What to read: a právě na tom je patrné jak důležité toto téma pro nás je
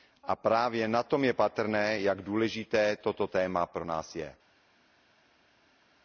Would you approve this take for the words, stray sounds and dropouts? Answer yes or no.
yes